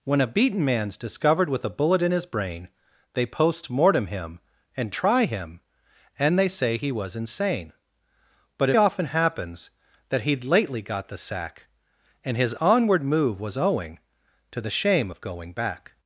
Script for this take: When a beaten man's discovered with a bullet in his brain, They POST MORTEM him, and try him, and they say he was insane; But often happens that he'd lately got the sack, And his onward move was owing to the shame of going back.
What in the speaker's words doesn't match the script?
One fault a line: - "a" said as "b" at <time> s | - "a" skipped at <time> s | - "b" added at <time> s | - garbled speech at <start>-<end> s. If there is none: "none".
none